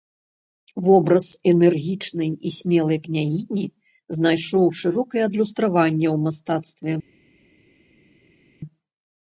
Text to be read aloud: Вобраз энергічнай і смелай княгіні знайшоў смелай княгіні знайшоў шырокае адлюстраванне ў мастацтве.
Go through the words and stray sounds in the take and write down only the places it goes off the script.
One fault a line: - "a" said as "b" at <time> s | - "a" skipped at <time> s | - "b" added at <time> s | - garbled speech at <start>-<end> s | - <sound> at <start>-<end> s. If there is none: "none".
- "смелай княгіні знайшоў" skipped at 4.6 s